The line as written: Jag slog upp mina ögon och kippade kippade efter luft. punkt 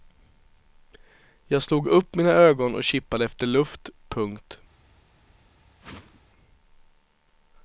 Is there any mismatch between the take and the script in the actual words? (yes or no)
yes